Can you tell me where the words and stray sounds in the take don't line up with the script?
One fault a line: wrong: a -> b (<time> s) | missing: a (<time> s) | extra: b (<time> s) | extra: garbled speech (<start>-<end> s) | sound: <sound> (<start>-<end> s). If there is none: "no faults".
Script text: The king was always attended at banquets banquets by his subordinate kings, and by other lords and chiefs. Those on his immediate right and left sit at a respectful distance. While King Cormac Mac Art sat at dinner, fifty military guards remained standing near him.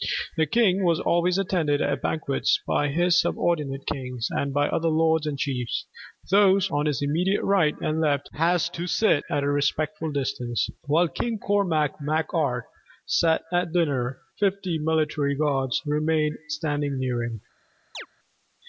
missing: banquets (2.6 s)
extra: had to (8.3 s)
sound: chirp (17.9-18.1 s)